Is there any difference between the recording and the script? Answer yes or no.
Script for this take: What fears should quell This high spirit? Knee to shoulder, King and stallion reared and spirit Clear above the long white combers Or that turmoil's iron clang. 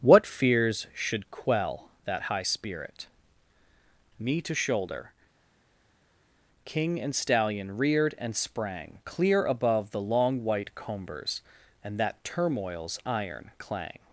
yes